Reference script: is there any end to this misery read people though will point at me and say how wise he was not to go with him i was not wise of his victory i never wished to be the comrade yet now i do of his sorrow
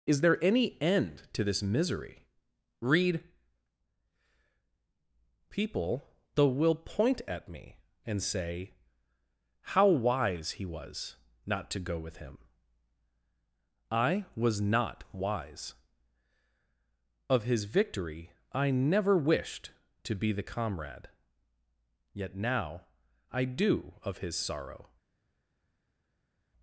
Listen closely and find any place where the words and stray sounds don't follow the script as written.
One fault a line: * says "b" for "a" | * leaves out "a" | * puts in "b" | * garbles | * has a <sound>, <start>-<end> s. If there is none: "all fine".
all fine